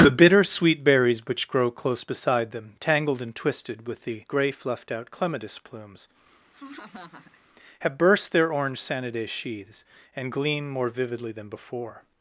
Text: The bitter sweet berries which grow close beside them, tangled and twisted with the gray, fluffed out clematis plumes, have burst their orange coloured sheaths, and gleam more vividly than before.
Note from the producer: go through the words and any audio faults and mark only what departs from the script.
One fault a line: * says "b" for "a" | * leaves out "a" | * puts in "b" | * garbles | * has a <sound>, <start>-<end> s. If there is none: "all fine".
* has a laugh, 6.5-7.4 s
* says "sanidae" for "coloured"